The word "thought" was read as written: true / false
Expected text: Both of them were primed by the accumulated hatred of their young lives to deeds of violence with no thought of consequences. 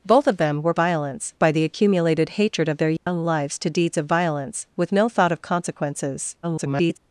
true